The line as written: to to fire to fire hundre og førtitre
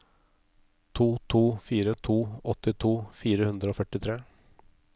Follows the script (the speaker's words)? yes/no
no